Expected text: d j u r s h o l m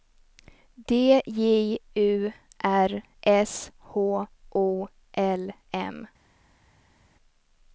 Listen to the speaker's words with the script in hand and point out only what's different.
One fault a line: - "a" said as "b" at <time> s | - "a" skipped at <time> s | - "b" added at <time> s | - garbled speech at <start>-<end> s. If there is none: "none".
none